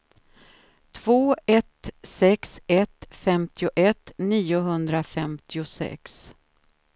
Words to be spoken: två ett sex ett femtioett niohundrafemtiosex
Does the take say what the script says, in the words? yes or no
yes